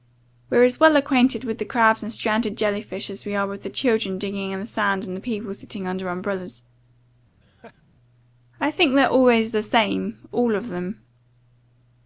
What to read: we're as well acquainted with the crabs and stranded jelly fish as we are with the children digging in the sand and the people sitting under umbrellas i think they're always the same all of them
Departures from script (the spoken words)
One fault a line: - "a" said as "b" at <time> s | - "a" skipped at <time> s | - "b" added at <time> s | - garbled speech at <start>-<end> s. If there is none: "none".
none